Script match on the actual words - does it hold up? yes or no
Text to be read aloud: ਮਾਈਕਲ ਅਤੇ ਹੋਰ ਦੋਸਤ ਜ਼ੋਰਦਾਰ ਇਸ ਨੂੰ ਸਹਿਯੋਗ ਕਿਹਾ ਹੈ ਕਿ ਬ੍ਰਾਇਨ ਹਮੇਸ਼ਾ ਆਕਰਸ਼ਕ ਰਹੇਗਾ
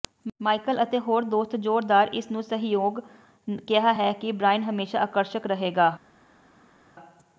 yes